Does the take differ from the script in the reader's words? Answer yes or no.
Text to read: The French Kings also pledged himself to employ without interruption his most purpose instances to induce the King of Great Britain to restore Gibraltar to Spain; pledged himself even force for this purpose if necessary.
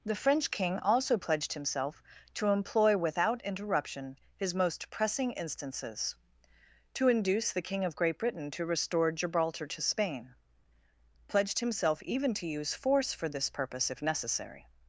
yes